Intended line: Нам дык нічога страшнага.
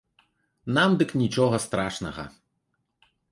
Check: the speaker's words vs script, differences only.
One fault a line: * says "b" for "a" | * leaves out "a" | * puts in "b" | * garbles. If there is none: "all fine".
all fine